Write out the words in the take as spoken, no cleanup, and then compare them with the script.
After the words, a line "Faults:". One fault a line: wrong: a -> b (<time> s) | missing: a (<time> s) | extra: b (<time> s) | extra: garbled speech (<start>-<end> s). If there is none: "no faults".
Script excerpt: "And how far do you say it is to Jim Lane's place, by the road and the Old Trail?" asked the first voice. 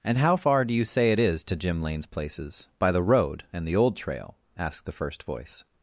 "And how far do you say it is to Jim Lane's places, by the road and the Old Trail?" asked the first voice.
Faults:
wrong: place -> places (2.1 s)